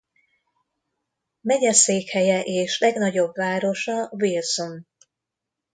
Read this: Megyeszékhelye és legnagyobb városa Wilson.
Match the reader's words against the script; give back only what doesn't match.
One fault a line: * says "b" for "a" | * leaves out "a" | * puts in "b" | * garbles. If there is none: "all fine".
all fine